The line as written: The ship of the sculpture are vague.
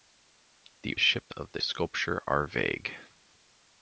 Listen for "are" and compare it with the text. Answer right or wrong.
right